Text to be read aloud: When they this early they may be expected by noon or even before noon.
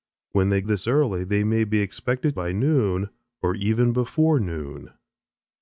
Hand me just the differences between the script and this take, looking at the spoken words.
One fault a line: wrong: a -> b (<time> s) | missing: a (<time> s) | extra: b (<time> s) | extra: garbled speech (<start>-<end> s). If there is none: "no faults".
no faults